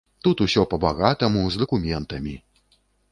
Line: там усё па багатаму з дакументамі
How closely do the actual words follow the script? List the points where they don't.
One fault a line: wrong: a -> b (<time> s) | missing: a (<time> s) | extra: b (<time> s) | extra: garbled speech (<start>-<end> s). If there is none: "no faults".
wrong: там -> тут (0.3 s)